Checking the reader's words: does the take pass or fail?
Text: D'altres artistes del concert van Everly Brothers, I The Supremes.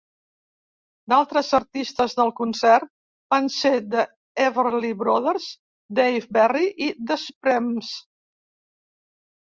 fail